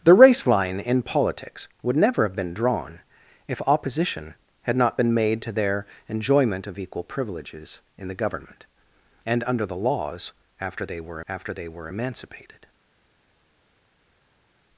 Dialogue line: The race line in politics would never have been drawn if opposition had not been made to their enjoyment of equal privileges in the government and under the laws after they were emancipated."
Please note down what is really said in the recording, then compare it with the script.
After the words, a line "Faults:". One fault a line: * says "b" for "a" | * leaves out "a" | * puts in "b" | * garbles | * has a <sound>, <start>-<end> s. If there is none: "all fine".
The race line in politics would never have been drawn if opposition had not been made to their enjoyment of equal privileges in the government and under the laws after they were after they were emancipated."
Faults:
* puts in "after they were"